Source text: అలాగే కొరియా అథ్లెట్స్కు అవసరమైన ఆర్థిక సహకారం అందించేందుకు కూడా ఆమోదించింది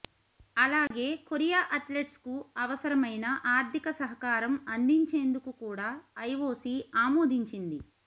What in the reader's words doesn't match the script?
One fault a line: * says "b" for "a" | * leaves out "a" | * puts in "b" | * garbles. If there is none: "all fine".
* puts in "ఐఓసీ"